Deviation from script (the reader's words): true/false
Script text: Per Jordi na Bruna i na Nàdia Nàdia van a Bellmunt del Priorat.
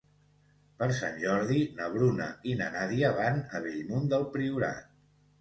true